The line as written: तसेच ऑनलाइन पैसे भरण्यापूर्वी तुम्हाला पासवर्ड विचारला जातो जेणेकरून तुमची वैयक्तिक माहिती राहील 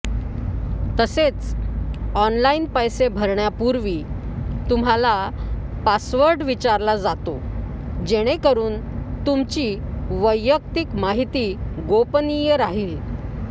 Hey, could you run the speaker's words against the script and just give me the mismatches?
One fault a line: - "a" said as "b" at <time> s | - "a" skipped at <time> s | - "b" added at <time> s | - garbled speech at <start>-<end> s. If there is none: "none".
- "गोपनीय" added at 11.9 s